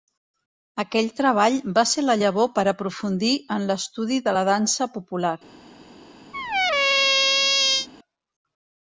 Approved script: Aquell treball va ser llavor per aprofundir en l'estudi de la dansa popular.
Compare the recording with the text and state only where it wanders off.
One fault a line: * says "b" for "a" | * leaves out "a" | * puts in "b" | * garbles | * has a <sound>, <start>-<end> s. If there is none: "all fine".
* puts in "la"
* has a squeak, 6.3-7.9 s